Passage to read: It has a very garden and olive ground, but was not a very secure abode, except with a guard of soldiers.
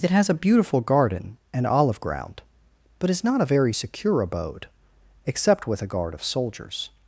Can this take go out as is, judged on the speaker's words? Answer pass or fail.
fail